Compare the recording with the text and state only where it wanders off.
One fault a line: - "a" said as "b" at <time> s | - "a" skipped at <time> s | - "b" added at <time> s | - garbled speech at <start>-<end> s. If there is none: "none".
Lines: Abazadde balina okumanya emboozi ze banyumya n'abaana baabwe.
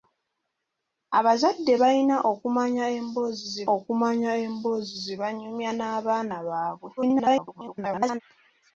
- "okumanya emboozi ze" added at 3.7 s
- garbled speech at 7.0-8.2 s